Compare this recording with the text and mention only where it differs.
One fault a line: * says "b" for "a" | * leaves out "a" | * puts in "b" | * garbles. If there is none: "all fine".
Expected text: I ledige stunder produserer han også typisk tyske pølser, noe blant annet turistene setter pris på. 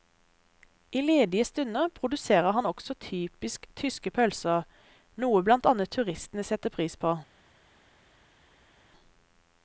all fine